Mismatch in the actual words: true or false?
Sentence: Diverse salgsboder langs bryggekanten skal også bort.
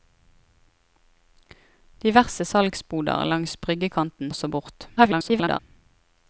true